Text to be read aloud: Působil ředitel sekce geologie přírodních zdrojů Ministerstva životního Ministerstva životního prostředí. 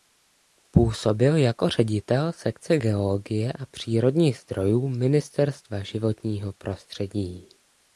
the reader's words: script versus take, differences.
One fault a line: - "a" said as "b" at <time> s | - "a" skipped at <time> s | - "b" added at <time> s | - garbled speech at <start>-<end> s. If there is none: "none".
- "jako" added at 1.4 s
- "a" added at 3.5 s
- "Ministerstva životního" skipped at 6.5 s